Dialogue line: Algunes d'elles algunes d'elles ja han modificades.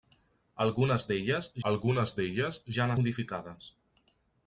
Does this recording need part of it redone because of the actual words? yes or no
no